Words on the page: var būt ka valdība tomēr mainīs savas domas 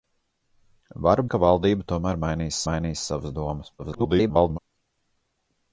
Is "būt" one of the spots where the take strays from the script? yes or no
yes